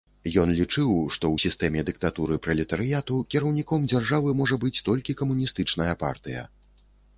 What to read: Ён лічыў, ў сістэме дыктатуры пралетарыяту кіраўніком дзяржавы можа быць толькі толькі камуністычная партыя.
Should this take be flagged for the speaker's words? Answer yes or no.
yes